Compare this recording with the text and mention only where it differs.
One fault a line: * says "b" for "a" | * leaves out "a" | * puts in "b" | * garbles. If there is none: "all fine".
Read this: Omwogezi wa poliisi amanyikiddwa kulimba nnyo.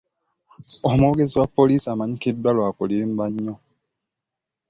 * puts in "lwa"